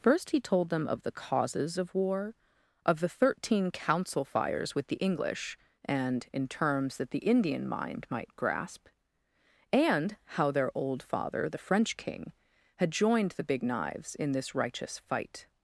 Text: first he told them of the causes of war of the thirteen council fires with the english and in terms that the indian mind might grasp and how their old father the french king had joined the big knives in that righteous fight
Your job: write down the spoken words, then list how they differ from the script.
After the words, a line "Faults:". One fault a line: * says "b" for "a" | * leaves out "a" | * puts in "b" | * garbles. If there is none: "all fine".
first he told them of the causes of war of the thirteen council fires with the english and in terms that the indian mind might grasp and how their old father the french king had joined the big knives in this righteous fight
Faults:
* says "this" for "that"